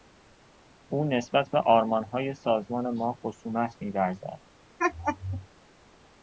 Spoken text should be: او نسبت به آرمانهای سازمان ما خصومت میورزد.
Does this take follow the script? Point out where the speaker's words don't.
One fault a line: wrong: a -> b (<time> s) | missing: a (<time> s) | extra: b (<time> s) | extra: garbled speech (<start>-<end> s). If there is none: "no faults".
no faults